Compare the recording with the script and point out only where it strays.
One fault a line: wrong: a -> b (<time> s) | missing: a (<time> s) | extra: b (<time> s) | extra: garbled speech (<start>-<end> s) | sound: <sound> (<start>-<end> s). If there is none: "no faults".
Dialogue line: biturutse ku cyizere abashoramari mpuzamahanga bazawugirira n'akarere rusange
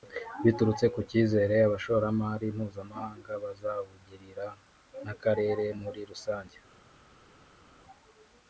extra: muri (5.8 s)